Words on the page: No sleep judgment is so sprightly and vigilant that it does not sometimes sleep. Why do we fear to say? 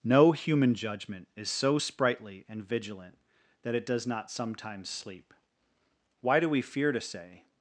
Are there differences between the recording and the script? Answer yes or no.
yes